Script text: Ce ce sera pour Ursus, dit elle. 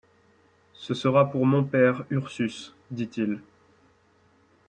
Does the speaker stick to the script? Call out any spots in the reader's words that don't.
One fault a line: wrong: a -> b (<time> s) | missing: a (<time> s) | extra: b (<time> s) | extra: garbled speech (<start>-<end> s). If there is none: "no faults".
missing: ce (0.9 s)
extra: mon père (1.4 s)
wrong: elle -> il (3.2 s)